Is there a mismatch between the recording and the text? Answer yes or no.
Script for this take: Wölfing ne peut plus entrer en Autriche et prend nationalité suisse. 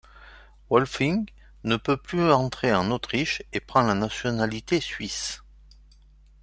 yes